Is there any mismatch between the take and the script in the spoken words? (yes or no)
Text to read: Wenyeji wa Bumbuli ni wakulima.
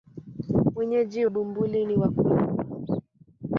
yes